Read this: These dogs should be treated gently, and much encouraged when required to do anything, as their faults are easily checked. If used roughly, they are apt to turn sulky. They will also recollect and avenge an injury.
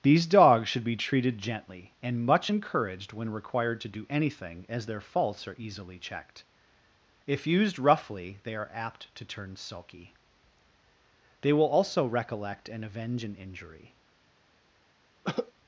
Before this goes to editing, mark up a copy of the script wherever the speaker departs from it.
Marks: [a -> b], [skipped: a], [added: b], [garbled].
These dogs should be treated gently, and much encouraged when required to do anything, as their faults are easily checked. If used roughly, they are apt to turn sulky. They will also recollect and avenge an injury.